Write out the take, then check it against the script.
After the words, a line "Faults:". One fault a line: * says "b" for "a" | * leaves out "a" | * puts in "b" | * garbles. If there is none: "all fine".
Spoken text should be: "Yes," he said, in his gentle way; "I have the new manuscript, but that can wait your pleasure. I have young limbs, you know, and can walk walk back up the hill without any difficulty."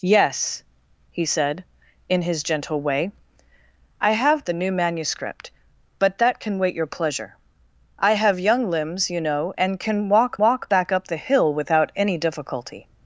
"Yes," he said, in his gentle way; "I have the new manuscript, but that can wait your pleasure. I have young limbs, you know, and can walk walk back up the hill without any difficulty."
Faults:
all fine